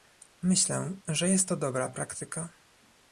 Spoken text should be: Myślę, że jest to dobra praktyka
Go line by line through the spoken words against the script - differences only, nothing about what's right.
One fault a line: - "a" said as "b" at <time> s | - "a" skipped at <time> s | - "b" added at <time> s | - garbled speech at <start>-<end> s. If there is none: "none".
none